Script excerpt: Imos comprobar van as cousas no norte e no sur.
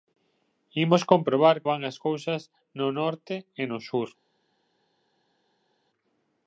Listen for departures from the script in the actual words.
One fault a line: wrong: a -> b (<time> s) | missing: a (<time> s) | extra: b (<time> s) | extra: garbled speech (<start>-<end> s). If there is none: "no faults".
no faults